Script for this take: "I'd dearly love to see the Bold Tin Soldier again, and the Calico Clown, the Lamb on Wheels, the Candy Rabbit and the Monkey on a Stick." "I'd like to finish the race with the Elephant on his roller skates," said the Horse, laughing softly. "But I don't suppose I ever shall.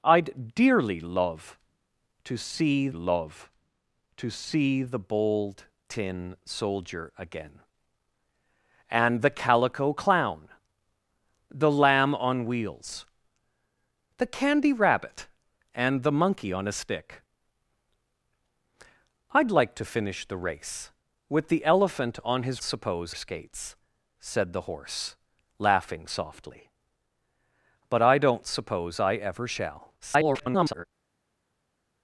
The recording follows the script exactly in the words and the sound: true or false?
false